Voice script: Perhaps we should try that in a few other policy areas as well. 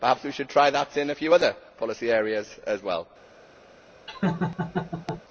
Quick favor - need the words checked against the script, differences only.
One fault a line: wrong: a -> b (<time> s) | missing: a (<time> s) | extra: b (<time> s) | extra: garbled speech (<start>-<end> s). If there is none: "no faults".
no faults